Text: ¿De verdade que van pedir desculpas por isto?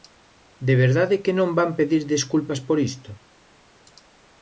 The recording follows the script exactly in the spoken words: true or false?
false